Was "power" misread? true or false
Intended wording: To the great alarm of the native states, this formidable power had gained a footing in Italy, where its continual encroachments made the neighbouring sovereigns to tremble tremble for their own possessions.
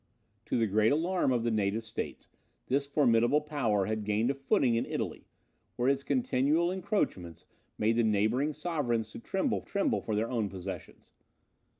false